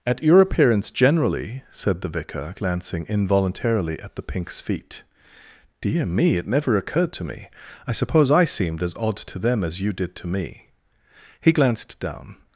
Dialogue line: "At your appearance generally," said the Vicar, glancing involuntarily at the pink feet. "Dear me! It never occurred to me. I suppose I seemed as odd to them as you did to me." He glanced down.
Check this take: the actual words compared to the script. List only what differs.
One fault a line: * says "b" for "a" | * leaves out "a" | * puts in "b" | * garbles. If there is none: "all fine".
* says "pinks" for "pink"